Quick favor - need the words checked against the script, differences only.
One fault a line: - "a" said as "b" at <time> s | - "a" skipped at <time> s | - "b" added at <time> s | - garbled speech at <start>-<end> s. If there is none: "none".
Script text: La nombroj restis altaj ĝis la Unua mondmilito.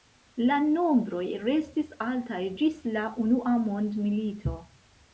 none